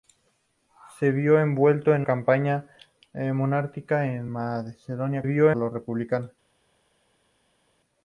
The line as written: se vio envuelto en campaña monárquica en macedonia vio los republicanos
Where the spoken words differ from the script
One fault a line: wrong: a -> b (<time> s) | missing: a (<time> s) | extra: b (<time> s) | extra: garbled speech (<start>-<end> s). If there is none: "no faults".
no faults